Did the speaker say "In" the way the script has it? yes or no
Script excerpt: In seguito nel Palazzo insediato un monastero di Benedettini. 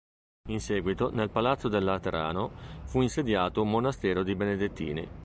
yes